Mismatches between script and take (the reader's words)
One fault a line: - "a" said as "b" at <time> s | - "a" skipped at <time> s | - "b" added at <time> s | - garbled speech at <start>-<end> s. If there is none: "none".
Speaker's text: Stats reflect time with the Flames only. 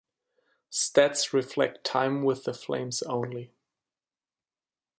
none